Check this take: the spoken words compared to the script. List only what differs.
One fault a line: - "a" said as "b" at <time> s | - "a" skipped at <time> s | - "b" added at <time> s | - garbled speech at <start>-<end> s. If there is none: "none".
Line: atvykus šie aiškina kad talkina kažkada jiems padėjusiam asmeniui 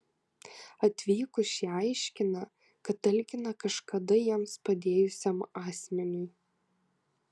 none